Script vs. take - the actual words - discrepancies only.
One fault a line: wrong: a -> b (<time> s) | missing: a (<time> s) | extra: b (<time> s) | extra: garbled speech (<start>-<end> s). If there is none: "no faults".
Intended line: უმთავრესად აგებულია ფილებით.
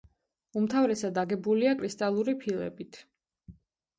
extra: კრისტალური (1.8 s)